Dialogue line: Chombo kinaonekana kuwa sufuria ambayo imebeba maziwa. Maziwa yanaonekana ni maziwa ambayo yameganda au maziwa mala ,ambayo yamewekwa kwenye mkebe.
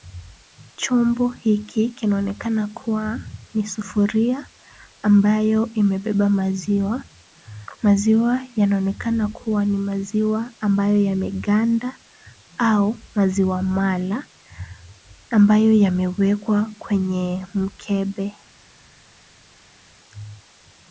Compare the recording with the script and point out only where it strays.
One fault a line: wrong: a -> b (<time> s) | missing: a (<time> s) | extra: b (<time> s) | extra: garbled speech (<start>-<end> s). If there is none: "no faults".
extra: hiki (1.3 s)
extra: ni (3.5 s)
extra: kuwa (9.3 s)